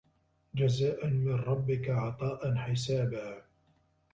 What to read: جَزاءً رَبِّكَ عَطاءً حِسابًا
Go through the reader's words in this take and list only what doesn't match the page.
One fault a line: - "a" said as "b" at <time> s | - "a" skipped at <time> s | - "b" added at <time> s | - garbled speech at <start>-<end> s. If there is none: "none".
- "مِن" added at 1.1 s